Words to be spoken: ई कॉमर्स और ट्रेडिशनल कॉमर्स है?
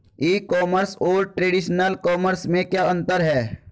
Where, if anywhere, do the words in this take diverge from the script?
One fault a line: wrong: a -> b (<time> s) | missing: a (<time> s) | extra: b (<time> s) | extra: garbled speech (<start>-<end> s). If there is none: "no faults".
extra: में क्या अंतर (2.5 s)